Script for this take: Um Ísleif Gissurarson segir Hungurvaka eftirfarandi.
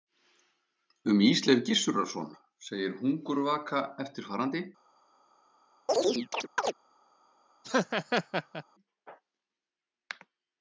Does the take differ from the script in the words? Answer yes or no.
no